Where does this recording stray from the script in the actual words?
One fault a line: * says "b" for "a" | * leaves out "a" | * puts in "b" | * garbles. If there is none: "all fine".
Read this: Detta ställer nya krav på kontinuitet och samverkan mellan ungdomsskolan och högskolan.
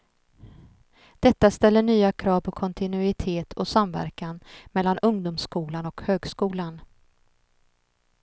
all fine